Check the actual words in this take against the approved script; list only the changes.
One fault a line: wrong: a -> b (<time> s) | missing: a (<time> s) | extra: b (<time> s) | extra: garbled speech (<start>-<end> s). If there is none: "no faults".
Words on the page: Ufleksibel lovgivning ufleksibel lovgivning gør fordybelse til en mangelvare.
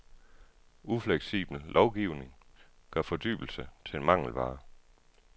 missing: ufleksibel lovgivning (2.4 s)